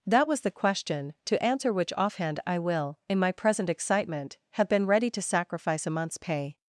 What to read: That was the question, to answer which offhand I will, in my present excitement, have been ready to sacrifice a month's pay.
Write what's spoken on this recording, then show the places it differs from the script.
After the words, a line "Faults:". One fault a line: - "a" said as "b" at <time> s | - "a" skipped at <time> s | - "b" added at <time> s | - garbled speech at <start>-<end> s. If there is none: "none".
That was the question, to answer which offhand I will, in my present excitement, have been ready to sacrifice a month's pay.
Faults:
none